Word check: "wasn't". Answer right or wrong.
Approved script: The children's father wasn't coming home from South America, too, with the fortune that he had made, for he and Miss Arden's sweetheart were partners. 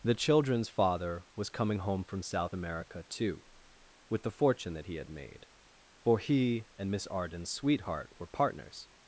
wrong